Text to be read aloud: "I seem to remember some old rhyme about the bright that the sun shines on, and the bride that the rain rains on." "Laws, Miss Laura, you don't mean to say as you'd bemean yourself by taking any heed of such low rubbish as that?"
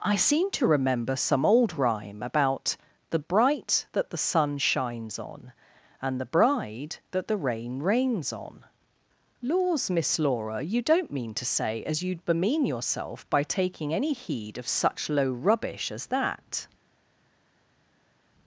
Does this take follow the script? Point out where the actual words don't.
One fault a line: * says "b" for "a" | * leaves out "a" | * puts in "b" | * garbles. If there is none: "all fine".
all fine